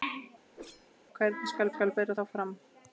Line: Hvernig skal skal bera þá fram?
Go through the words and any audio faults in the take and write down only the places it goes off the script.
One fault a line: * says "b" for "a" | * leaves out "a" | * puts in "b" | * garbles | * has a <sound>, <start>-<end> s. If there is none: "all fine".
* has a whoosh, 0.5-0.9 s